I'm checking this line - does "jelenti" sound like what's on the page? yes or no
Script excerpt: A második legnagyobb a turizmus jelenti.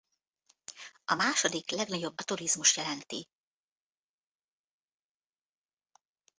yes